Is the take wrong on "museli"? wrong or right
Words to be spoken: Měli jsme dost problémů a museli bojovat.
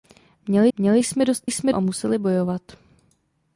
right